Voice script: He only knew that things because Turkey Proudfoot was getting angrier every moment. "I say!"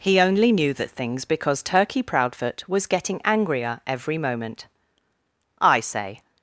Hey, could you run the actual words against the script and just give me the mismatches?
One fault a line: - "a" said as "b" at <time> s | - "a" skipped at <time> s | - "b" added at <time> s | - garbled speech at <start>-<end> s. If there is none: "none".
none